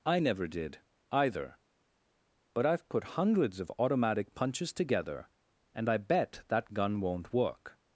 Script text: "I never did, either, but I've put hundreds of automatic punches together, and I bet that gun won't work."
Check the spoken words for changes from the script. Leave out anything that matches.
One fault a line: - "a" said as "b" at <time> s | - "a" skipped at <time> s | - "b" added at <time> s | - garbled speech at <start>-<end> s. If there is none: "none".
none